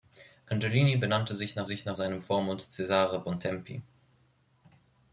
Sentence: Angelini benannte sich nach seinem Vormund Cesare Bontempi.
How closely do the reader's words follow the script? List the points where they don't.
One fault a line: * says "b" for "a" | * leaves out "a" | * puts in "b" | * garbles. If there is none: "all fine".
* puts in "sich nach"